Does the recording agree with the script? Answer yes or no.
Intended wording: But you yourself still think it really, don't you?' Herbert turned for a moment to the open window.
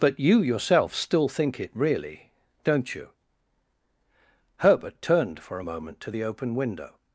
yes